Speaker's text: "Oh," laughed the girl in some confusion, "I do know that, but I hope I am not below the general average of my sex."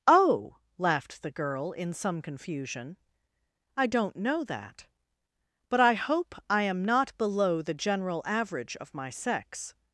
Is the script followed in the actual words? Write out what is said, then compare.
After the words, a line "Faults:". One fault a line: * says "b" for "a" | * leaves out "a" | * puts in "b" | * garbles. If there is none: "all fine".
"Oh," laughed the girl in some confusion, "I don't know that, but I hope I am not below the general average of my sex."
Faults:
* says "don't" for "do"